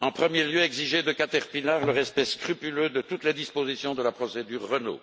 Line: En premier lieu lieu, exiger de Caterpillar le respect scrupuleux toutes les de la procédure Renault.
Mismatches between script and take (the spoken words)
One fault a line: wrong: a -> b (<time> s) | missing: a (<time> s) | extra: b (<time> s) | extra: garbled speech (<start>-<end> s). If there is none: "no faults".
missing: lieu (0.6 s)
extra: de (2.9 s)
extra: dispositions (3.4 s)